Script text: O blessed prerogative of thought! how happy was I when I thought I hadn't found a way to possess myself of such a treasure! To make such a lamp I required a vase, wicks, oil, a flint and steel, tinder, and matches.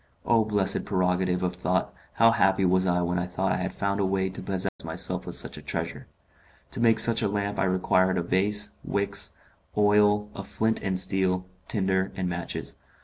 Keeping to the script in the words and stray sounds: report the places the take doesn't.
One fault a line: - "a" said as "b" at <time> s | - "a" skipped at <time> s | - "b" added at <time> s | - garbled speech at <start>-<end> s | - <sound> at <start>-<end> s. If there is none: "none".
- "hadn't" said as "had" at 3.6 s
- dropout at 4.7-4.8 s